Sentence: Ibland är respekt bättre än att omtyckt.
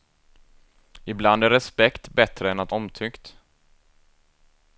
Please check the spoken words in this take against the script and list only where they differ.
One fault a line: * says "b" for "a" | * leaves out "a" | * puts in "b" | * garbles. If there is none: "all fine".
all fine